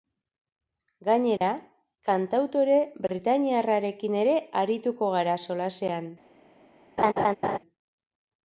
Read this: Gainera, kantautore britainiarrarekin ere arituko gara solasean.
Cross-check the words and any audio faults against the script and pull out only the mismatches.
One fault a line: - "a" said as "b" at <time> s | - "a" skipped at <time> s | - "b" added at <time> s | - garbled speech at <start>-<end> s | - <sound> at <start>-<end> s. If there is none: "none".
- dropout at 1.4-1.4 s
- laugh at 7.0-7.6 s